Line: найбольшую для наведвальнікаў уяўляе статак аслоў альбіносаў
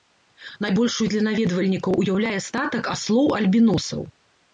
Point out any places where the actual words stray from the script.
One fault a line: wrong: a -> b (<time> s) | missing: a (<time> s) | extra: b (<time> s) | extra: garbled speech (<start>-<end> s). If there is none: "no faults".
no faults